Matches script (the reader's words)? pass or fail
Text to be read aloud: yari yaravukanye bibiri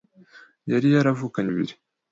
pass